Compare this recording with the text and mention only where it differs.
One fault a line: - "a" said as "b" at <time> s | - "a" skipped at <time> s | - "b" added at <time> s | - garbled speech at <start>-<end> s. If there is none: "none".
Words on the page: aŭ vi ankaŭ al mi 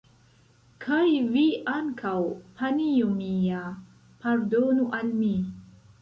- "aŭ" said as "kaj" at 0.8 s
- "panjo mia pardonu" added at 2.6 s